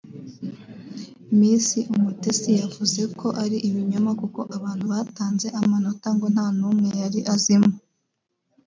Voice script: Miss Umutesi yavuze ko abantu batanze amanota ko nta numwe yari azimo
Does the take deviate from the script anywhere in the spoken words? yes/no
yes